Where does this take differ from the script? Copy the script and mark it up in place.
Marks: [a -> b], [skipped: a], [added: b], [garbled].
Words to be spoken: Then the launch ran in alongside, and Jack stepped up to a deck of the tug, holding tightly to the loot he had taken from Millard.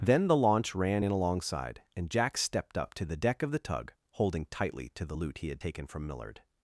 Then the launch ran in alongside, and Jack stepped up to [a -> the] deck of the tug, holding tightly to the loot he had taken from Millard.